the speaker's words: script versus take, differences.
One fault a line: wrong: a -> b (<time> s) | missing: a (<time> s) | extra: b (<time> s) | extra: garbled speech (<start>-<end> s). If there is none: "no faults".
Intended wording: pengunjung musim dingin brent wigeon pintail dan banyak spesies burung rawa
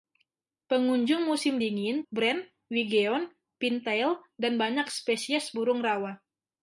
no faults